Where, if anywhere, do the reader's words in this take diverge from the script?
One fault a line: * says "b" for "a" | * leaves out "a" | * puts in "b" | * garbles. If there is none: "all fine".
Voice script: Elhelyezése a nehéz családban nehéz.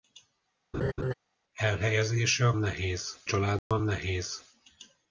all fine